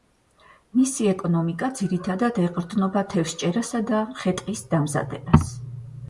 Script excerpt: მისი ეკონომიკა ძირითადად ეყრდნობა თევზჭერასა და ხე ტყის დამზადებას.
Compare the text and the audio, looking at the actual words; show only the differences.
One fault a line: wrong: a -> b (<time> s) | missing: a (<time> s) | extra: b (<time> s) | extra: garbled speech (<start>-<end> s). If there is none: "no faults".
no faults